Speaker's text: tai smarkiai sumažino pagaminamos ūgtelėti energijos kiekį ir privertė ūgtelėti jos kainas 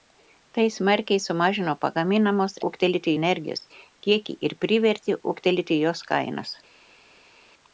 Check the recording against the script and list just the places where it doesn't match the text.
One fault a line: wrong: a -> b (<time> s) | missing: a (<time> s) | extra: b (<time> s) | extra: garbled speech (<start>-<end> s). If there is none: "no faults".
no faults